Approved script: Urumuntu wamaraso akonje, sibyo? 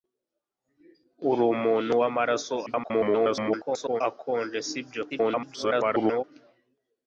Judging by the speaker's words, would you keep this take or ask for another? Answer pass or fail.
fail